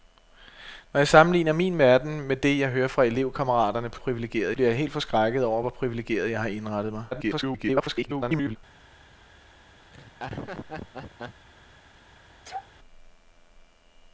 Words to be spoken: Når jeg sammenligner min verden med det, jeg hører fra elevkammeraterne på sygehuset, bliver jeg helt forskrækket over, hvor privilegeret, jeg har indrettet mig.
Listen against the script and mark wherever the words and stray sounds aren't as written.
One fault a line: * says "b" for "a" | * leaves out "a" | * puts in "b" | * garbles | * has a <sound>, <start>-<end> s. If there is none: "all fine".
* says "privilegeret" for "sygehuset"
* garbles
* has a laugh, 9.9-11.5 s
* has a sneeze, 12.4-12.7 s